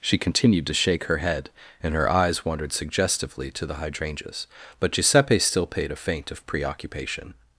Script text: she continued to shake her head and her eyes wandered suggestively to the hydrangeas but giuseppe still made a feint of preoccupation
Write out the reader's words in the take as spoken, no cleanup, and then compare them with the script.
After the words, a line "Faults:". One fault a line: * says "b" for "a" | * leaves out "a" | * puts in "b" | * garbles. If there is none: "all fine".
she continued to shake her head and her eyes wandered suggestively to the hydrangeas but giuseppe still paid a feint of preoccupation
Faults:
* says "paid" for "made"